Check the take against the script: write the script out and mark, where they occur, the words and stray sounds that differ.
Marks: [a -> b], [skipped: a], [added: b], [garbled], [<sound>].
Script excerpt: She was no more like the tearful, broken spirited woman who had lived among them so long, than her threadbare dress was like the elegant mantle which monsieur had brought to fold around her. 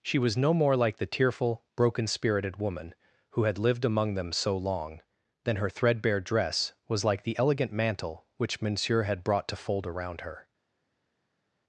She was no more like the tearful, broken spirited woman who had lived among them so long, than her threadbare dress was like the elegant mantle which monsieur had brought to fold around her.